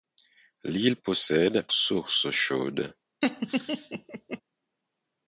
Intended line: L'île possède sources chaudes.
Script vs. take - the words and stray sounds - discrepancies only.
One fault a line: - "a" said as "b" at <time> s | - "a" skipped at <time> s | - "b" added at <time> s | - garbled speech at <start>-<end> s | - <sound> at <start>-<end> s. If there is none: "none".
- laugh at 3.2-4.4 s